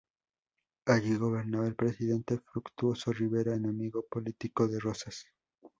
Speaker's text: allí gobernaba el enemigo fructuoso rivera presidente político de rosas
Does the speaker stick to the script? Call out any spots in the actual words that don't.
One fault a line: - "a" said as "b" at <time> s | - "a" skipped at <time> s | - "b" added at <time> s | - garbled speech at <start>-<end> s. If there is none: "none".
- "enemigo" said as "presidente" at 1.7 s
- "presidente" said as "enemigo" at 3.5 s